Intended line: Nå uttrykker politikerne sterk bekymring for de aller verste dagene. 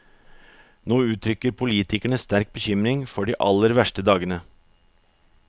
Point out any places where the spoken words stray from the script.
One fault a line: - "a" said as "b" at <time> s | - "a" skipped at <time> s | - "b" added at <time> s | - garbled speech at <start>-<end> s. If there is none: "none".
none